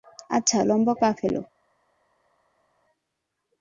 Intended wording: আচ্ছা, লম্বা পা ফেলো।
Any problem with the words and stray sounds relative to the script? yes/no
no